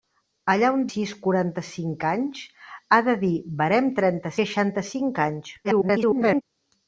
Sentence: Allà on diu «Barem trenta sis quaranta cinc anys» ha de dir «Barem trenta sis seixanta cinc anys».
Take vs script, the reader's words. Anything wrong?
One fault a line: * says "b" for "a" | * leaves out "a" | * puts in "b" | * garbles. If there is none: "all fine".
* leaves out "diu Barem trenta"
* leaves out "sis"
* garbles